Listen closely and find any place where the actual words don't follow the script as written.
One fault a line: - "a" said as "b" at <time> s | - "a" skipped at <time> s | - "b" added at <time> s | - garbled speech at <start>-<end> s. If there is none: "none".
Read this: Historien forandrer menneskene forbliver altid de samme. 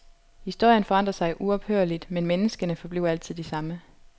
- "sig uophørligt men" added at 1.1 s